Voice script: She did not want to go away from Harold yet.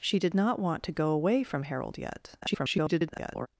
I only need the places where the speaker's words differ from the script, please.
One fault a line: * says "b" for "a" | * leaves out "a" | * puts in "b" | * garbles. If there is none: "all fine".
* garbles